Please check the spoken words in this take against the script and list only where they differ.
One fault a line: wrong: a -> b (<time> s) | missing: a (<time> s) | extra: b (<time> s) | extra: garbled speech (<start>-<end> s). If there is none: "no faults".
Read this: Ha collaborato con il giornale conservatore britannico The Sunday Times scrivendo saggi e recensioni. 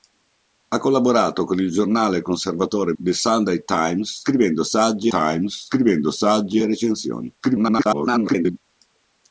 missing: britannico (3.0 s)
extra: Times scrivendo saggi (5.1 s)
extra: garbled speech (7.4-8.6 s)